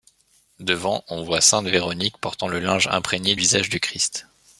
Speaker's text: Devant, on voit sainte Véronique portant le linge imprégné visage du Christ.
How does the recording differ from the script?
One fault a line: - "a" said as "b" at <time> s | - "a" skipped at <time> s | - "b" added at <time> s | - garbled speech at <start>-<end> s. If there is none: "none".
none